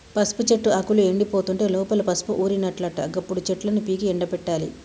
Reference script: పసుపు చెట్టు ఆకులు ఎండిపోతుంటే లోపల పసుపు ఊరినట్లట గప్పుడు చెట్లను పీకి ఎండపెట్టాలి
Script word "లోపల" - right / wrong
right